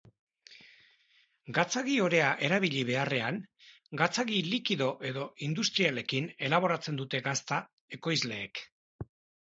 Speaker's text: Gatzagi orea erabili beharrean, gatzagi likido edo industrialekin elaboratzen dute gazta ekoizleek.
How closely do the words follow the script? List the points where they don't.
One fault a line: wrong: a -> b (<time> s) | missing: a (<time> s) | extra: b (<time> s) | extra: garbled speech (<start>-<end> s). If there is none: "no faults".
no faults